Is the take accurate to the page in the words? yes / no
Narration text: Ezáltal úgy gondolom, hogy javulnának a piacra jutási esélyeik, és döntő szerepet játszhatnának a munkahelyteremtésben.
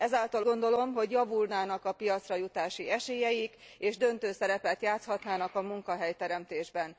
no